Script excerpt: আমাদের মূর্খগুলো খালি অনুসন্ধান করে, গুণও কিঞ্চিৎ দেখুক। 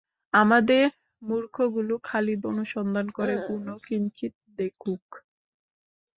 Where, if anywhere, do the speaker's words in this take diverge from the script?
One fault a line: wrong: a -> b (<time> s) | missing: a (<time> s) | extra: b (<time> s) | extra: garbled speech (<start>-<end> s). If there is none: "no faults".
no faults